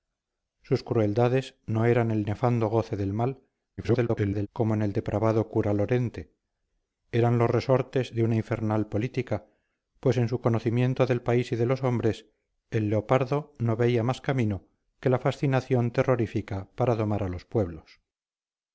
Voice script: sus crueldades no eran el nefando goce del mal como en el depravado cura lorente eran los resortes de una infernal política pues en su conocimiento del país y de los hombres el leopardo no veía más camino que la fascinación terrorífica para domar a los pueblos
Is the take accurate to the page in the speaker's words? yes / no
no